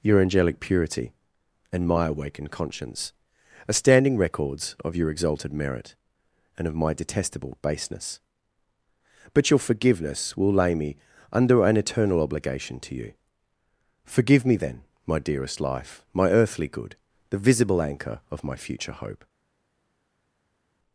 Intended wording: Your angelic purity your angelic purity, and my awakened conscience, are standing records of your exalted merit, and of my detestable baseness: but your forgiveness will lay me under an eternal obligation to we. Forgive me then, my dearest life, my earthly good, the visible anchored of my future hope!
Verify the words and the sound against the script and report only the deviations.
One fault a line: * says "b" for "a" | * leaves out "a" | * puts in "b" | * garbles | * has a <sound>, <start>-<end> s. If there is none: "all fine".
* leaves out "your angelic purity"
* says "you" for "we"
* says "anchor" for "anchored"